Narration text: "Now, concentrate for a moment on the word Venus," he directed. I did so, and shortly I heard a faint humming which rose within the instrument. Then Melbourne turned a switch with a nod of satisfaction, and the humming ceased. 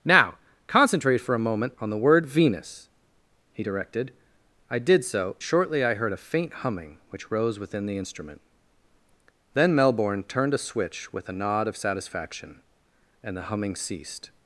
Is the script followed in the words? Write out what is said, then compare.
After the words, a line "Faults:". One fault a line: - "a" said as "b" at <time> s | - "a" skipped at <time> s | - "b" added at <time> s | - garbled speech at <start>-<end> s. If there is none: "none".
"Now, concentrate for a moment on the word Venus," he directed. I did so, shortly I heard a faint humming which rose within the instrument. Then Melbourne turned a switch with a nod of satisfaction, and the humming ceased.
Faults:
- "and" skipped at 5.4 s